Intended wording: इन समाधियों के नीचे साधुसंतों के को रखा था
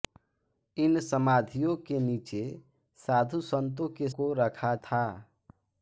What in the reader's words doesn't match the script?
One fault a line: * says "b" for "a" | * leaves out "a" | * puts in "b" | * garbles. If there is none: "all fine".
all fine